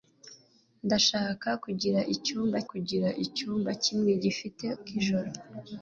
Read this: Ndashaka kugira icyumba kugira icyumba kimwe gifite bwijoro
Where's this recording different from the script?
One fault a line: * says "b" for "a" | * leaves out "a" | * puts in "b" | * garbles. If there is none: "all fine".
all fine